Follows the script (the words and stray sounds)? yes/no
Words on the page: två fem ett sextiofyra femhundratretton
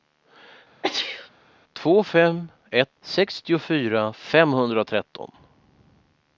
no